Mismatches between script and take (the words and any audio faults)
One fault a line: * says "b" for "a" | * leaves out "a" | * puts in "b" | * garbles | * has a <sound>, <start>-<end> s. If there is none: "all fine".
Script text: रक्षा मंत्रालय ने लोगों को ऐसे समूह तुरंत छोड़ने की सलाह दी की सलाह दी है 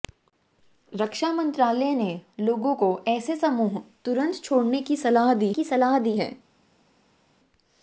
all fine